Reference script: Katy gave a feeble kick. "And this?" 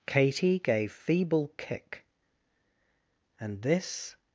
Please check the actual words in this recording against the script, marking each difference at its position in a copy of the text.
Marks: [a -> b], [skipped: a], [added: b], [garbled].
Katy gave [skipped: a] feeble kick. "And this?"